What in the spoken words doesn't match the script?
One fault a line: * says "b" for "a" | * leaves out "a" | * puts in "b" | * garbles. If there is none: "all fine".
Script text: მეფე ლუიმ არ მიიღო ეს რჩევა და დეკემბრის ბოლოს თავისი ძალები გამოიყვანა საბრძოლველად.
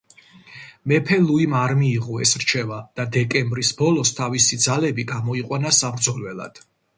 all fine